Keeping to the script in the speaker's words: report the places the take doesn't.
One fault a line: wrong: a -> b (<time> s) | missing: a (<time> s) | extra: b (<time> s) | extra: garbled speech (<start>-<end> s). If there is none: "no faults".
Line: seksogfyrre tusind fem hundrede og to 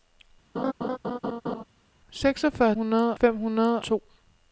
wrong: tusind -> hundrede (2.7 s)
missing: og (3.8 s)